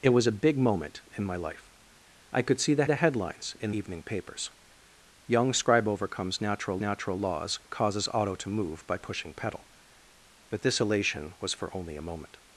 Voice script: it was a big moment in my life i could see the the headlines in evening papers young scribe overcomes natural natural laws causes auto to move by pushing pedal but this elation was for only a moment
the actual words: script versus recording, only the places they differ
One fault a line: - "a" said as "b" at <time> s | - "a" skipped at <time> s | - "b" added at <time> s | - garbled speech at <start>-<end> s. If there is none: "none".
none